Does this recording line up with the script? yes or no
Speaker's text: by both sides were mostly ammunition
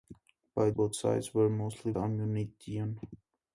yes